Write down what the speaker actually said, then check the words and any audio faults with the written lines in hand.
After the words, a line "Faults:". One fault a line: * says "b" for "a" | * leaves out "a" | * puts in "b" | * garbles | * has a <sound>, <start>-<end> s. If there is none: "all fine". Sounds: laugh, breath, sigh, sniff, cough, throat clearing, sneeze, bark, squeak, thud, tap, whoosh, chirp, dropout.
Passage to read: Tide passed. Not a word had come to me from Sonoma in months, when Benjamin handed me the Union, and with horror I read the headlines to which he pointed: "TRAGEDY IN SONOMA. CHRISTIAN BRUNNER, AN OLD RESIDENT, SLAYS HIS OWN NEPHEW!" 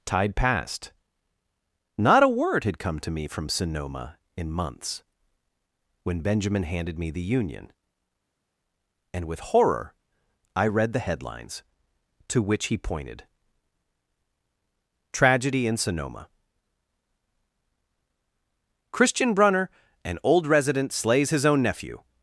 Tide passed. Not a word had come to me from Sonoma in months, when Benjamin handed me the Union, and with horror I read the headlines to which he pointed: "TRAGEDY IN SONOMA. CHRISTIAN BRUNNER, AN OLD RESIDENT, SLAYS HIS OWN NEPHEW!"
Faults:
all fine